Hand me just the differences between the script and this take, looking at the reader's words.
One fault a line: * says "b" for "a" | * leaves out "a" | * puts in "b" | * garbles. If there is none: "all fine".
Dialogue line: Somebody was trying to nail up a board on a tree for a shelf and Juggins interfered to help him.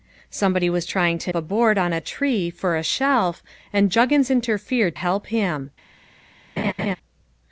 * leaves out "nail up"
* leaves out "to"